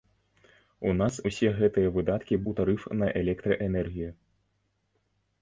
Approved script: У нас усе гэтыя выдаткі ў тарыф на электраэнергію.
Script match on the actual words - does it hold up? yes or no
yes